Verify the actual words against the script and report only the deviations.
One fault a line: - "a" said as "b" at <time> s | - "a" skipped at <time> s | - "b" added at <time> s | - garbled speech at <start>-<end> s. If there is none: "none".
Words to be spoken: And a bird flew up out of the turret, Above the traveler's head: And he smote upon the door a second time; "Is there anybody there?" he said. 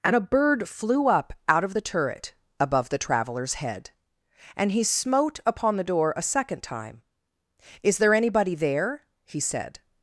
none